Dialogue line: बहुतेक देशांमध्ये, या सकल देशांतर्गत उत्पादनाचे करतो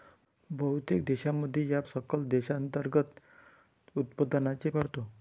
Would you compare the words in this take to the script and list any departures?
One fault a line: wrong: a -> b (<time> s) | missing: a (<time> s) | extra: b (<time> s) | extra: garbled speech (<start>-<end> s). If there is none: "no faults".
no faults